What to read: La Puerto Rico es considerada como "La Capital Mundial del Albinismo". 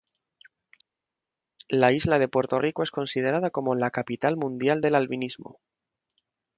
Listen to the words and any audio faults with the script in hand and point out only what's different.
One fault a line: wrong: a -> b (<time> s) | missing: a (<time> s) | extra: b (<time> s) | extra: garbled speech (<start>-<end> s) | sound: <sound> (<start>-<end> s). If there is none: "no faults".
extra: isla de (1.9 s)